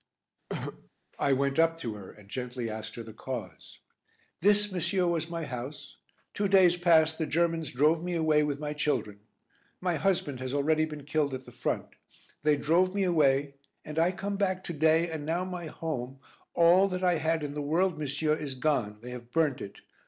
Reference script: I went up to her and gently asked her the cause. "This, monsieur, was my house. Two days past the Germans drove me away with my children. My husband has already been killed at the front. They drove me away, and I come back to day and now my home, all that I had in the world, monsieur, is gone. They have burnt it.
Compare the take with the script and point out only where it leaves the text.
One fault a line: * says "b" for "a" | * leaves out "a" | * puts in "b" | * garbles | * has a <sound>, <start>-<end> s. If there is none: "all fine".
* has a throat clearing, 0.5-0.9 s